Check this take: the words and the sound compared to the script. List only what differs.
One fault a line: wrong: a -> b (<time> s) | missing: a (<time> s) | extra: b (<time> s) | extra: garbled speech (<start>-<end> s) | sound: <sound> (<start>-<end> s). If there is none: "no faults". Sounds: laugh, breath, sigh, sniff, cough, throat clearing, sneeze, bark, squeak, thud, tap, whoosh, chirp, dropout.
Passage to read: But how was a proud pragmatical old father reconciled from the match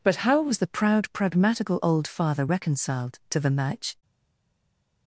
wrong: a -> the (0.6 s)
wrong: from -> to (3.3 s)